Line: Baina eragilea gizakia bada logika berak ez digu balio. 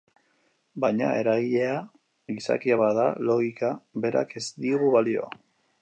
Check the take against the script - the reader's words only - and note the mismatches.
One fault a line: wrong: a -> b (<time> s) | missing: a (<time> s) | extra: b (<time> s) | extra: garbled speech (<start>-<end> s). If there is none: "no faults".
no faults